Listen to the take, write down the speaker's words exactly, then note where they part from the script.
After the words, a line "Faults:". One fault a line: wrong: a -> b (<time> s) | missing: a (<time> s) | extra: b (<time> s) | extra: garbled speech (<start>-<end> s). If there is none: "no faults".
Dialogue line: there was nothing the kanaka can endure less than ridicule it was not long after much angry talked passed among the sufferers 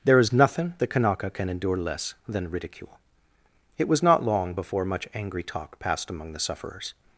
there is nothing the kanaka can endure less than ridicule it was not long before much angry talk passed among the sufferers
Faults:
wrong: was -> is (0.2 s)
wrong: after -> before (4.5 s)
wrong: talked -> talk (5.4 s)